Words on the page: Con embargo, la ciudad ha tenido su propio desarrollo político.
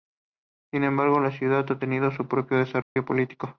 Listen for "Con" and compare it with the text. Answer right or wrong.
wrong